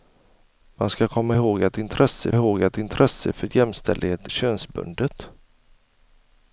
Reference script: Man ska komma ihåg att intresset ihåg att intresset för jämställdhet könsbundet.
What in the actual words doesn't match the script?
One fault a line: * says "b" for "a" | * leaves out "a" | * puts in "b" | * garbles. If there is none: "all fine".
all fine